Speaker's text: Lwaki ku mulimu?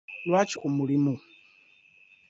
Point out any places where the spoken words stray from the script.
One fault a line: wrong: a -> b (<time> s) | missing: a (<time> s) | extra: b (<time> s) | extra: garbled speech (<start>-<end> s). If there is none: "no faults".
no faults